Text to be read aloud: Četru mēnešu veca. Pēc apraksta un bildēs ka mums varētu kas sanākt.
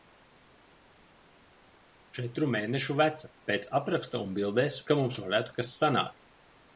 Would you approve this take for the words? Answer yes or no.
yes